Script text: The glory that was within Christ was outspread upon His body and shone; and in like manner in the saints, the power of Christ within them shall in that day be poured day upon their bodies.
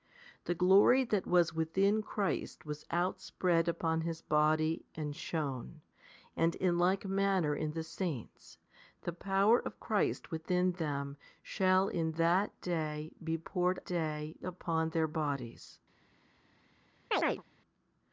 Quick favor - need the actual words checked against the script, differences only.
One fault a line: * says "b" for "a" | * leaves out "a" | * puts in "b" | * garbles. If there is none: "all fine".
all fine